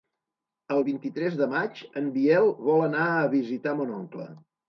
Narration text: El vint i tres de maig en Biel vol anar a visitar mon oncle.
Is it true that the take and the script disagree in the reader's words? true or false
false